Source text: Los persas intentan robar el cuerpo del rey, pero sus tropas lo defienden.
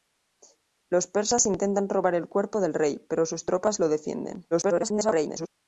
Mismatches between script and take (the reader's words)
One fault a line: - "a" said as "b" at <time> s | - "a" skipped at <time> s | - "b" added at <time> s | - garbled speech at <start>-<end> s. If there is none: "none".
- garbled speech at 4.5-5.5 s